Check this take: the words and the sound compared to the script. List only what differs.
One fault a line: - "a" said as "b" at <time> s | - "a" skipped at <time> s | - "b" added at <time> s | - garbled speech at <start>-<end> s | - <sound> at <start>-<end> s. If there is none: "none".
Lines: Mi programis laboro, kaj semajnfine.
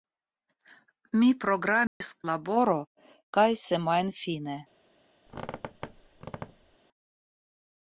- dropout at 1.9-2.0 s
- squeak at 5.3-6.8 s